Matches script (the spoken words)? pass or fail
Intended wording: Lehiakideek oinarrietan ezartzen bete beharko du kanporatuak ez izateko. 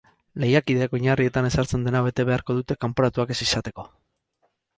fail